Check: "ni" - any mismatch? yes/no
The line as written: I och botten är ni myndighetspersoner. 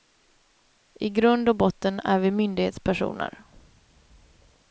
yes